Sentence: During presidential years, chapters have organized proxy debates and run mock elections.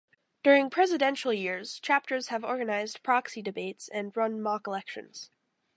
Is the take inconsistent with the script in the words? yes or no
no